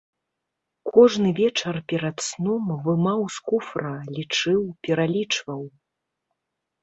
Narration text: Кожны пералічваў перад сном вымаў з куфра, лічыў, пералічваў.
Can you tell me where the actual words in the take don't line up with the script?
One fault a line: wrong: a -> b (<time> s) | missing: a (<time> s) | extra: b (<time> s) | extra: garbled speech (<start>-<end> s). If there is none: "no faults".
wrong: пералічваў -> вечар (1.4 s)